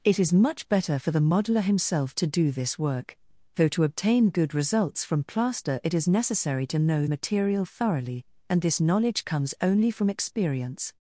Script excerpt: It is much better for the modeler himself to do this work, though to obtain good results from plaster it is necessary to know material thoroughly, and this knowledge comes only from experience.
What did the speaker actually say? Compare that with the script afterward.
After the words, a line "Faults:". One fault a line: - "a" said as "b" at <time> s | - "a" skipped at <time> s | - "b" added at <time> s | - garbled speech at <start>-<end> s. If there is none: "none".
It is much better for the modeler himself to do this work, though to obtain good results from plaster it is necessary to know material thoroughly, and this knowledge comes only from experience.
Faults:
none